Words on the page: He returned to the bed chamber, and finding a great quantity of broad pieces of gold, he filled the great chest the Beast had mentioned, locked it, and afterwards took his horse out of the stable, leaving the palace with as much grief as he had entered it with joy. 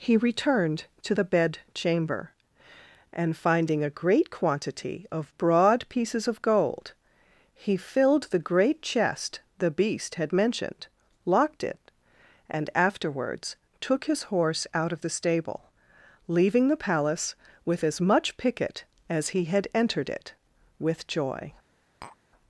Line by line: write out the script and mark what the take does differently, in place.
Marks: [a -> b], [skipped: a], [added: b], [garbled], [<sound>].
He returned to the bed chamber, and finding a great quantity of broad pieces of gold, he filled the great chest the Beast had mentioned, locked it, and afterwards took his horse out of the stable, leaving the palace with as much [grief -> picket] as he had entered it with joy. [tap]